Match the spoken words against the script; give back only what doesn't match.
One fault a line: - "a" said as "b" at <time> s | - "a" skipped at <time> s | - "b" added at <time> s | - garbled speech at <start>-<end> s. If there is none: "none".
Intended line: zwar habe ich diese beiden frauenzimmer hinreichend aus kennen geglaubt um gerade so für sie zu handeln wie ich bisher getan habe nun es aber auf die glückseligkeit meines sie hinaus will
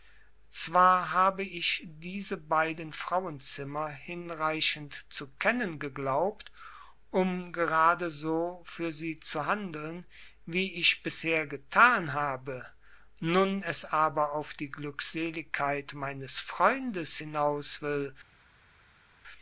- "aus" said as "zu" at 5.1 s
- "sie" said as "freundes" at 16.4 s